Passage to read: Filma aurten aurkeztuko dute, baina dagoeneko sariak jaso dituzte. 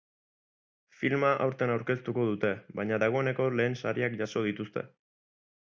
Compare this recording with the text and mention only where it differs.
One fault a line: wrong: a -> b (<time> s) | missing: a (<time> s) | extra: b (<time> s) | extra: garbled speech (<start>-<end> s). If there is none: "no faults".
extra: lehen (3.6 s)